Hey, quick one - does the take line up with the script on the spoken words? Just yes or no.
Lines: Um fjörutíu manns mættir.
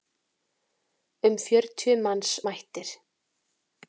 yes